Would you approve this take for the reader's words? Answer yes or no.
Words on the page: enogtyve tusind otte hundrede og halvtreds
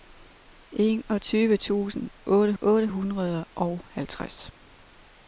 no